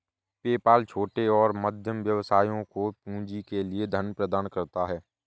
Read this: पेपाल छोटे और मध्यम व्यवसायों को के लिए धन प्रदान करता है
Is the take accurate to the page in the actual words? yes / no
no